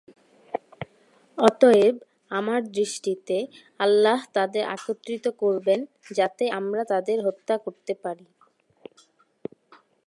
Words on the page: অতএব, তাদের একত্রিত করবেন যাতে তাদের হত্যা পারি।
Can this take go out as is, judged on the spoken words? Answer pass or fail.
fail